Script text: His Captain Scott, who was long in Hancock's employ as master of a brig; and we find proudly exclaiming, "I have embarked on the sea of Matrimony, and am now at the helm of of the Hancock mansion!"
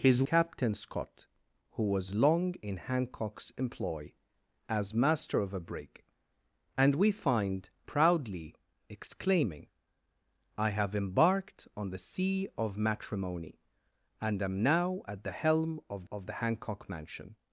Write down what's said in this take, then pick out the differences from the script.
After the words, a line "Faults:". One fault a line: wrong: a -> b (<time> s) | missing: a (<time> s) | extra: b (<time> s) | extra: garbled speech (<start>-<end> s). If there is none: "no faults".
His Captain Scott, who was long in Hancock's employ as master of a brig; and we find proudly exclaiming, "I have embarked on the sea of Matrimony, and am now at the helm of of the Hancock mansion!"
Faults:
no faults